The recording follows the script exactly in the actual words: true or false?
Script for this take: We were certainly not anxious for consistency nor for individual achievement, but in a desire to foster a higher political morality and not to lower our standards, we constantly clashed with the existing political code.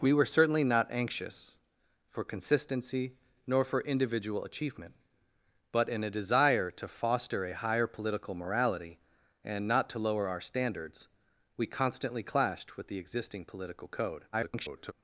false